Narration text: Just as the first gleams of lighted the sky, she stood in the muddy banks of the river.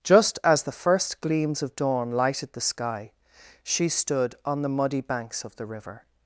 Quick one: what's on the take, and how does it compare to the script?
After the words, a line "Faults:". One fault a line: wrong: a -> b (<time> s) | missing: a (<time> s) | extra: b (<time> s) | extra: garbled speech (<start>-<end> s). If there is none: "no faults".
Just as the first gleams of dawn lighted the sky, she stood on the muddy banks of the river.
Faults:
extra: dawn (1.8 s)
wrong: in -> on (4.4 s)